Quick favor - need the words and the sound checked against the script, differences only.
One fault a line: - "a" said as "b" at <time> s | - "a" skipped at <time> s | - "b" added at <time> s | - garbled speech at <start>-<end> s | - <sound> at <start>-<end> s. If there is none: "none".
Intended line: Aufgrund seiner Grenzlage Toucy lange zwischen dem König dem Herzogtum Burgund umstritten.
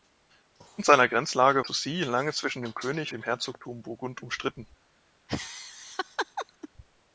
- laugh at 5.3-6.7 s